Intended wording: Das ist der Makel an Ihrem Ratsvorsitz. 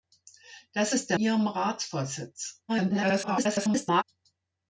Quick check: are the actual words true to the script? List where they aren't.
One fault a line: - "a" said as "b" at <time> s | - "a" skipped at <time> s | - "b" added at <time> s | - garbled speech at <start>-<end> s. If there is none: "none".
- "Makel an" skipped at 1.2 s
- garbled speech at 2.7-4.0 s